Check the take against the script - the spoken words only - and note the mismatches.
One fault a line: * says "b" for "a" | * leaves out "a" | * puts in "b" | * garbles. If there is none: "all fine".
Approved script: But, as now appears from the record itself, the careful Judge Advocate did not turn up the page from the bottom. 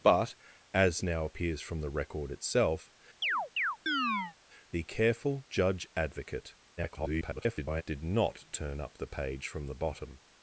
* garbles